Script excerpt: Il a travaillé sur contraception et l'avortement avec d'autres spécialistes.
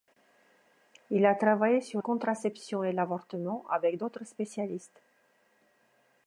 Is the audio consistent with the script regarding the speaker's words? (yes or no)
yes